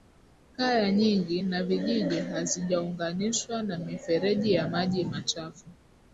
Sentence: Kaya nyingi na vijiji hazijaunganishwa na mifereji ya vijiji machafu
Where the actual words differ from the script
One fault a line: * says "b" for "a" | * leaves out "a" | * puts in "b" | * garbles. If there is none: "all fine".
* says "maji" for "vijiji"